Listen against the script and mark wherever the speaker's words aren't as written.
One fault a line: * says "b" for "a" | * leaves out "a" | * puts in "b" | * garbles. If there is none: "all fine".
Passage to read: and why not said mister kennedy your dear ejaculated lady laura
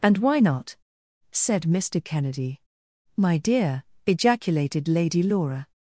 * says "my" for "your"